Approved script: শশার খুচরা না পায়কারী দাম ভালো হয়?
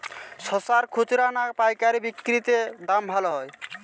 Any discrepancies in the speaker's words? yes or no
yes